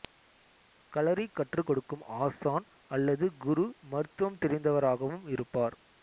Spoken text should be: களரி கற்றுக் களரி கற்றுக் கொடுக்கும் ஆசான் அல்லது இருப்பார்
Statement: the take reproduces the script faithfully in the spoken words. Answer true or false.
false